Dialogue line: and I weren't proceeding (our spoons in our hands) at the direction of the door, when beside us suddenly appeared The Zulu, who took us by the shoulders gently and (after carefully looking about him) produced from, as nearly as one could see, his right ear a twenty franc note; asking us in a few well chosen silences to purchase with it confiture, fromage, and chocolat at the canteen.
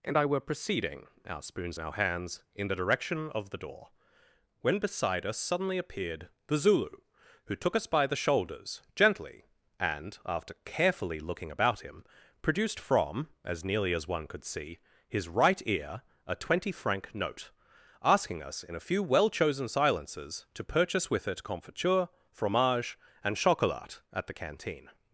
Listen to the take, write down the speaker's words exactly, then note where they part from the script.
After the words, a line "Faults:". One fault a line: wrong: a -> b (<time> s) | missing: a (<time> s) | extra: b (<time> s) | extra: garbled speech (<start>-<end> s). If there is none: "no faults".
and I were proceeding (our spoons in our hands) in the direction of the door, when beside us suddenly appeared The Zulu, who took us by the shoulders gently and (after carefully looking about him) produced from, as nearly as one could see, his right ear a twenty franc note; asking us in a few well chosen silences to purchase with it confiture, fromage, and chocolat at the canteen.
Faults:
wrong: weren't -> were (0.2 s)
wrong: at -> in (2.5 s)